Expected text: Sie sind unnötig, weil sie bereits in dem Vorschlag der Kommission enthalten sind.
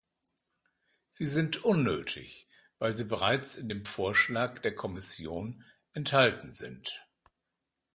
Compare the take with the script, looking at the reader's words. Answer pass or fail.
pass